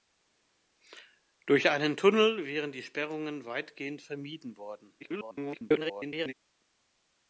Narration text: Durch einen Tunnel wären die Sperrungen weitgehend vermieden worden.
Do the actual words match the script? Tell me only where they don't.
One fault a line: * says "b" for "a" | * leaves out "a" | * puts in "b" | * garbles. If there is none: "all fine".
* garbles